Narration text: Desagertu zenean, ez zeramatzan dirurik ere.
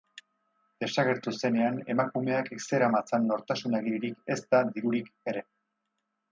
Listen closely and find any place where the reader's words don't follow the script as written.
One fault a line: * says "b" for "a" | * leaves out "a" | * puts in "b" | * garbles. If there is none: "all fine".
* puts in "emakumeak"
* puts in "nortasun agiririk ezta"